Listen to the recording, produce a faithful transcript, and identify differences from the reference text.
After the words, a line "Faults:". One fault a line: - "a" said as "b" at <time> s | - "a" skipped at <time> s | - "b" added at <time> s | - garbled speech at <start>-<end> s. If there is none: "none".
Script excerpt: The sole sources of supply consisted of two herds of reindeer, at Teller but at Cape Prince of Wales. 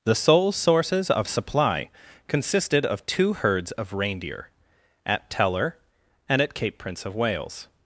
The sole sources of supply consisted of two herds of reindeer, at Teller and at Cape Prince of Wales.
Faults:
- "but" said as "and" at 6.3 s